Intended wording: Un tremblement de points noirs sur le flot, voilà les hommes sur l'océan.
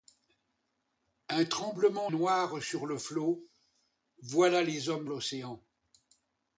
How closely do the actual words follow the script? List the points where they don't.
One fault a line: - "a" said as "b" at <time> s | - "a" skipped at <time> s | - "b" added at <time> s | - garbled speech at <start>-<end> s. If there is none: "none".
- "de points" skipped at 2.1 s
- "sur" skipped at 5.1 s